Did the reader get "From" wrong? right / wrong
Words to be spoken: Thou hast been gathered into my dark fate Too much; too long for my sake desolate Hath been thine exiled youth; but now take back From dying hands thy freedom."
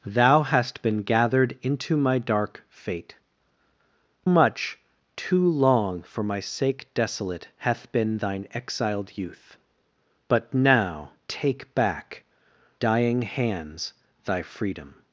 wrong